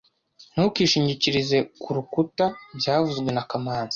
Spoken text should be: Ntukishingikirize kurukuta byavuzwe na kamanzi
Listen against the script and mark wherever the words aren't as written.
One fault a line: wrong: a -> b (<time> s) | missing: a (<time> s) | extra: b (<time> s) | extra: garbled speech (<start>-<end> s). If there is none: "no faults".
no faults